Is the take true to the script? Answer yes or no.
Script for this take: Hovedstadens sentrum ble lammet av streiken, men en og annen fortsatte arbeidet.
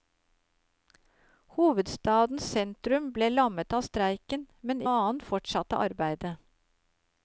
no